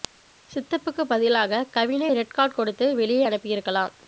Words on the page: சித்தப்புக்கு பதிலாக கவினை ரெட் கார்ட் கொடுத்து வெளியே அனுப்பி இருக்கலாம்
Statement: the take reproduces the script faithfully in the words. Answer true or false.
true